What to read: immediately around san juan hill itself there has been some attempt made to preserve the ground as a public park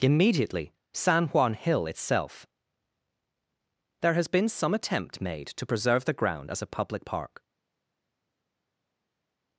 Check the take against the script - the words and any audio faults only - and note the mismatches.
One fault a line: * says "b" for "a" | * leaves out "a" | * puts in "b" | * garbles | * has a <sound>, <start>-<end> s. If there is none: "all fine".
* leaves out "around"